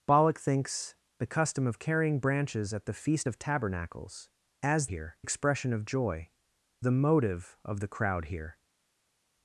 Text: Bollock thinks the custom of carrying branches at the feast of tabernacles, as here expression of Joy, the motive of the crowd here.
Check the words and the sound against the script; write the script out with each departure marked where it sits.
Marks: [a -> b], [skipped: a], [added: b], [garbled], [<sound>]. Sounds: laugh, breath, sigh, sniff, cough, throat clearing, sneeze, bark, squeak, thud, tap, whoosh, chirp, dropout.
Bollock thinks the custom of carrying branches at the feast of tabernacles, as here expression of Joy, the motive of the crowd here.